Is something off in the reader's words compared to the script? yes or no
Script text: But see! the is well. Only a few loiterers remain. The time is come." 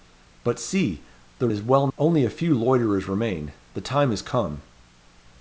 no